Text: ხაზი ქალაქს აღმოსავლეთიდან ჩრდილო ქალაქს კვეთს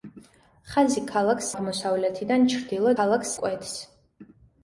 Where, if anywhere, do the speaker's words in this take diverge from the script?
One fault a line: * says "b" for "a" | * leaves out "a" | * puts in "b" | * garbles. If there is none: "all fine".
all fine